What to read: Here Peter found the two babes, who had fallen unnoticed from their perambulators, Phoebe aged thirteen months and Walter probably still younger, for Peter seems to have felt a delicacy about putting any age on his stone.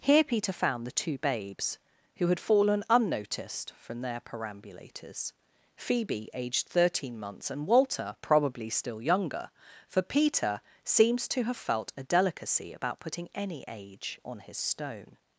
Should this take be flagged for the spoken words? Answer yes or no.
no